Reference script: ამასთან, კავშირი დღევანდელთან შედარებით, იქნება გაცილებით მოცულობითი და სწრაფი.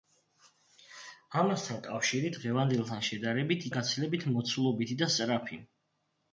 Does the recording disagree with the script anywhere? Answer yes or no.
yes